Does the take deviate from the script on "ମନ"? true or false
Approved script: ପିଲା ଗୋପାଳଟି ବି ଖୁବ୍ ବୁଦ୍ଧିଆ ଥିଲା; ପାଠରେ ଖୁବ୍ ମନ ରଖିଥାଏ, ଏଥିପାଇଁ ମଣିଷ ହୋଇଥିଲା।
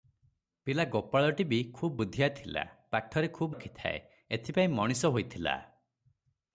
true